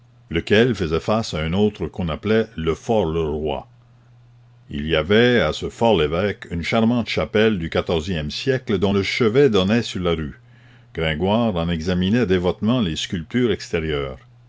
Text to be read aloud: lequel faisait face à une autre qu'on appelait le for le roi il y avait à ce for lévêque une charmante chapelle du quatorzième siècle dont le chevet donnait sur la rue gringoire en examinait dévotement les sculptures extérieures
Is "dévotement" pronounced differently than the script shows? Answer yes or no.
no